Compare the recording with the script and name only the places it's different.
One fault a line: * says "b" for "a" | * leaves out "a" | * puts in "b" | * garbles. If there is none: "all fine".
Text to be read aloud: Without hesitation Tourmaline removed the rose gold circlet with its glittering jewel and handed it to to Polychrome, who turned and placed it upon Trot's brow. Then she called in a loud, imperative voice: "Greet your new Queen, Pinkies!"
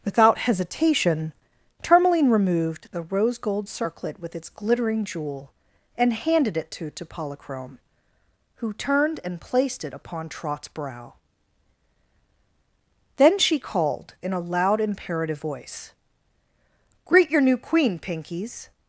all fine